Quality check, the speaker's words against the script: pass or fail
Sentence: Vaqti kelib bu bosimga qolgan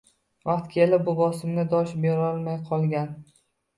fail